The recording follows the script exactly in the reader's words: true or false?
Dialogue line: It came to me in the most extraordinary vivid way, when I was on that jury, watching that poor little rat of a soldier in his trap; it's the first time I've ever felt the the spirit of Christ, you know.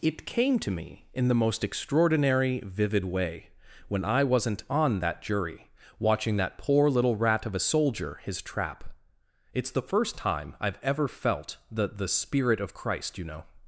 false